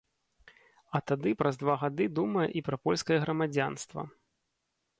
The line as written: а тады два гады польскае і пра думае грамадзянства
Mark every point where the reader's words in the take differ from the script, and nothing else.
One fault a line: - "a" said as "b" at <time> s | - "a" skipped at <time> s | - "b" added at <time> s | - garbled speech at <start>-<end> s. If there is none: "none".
- "праз" added at 1.4 s
- "польскае" said as "думае" at 2.2 s
- "думае" said as "польскае" at 2.8 s